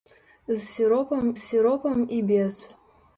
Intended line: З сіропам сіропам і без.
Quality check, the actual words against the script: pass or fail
pass